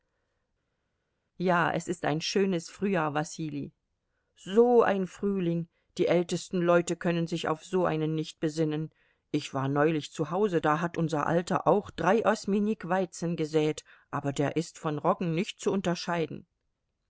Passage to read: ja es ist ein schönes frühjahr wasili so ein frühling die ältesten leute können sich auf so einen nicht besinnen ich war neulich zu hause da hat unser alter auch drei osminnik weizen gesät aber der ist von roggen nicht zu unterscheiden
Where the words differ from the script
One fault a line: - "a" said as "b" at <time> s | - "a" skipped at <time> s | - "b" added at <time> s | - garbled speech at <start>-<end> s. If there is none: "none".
none